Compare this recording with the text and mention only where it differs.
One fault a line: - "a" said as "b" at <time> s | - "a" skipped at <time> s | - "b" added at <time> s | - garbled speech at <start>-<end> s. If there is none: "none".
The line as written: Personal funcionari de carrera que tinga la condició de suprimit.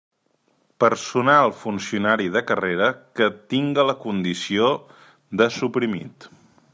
none